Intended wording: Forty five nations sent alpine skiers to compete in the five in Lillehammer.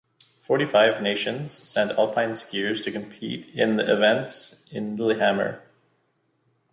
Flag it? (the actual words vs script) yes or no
yes